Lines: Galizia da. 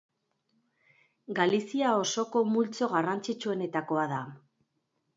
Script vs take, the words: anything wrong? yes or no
yes